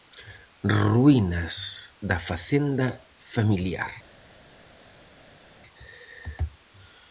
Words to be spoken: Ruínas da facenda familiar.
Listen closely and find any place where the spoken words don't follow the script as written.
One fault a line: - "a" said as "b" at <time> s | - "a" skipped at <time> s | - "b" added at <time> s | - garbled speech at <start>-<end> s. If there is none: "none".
none